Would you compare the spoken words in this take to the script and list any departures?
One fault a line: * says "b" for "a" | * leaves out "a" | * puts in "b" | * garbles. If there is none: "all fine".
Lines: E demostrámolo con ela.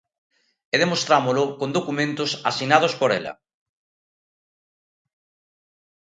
* puts in "documentos asinados por"